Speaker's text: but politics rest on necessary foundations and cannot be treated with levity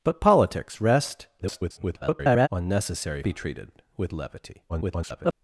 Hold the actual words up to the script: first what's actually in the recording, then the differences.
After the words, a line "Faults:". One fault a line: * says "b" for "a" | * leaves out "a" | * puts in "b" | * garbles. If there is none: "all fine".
but politics rest [garbled] on necessary be treated with levity [garbled]
Faults:
* garbles
* leaves out "foundations and cannot"
* garbles